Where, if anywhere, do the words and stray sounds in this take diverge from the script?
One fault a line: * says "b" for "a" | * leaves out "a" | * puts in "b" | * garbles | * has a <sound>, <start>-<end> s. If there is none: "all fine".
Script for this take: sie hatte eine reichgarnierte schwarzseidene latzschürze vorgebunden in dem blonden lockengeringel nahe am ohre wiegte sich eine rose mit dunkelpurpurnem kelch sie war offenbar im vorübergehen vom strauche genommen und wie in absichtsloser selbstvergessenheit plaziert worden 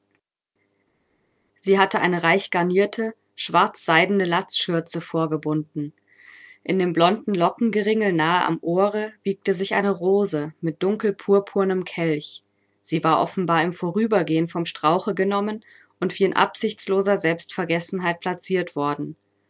all fine